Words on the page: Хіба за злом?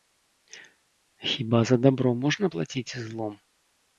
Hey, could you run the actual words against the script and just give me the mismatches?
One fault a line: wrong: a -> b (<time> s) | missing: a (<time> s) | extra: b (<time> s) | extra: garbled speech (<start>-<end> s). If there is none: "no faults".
extra: дабро можна плаціць (1.8 s)